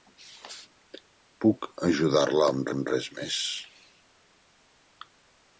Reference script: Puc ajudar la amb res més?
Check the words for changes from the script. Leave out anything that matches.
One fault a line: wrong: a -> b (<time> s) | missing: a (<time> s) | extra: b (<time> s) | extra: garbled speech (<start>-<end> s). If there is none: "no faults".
extra: amb (2.7 s)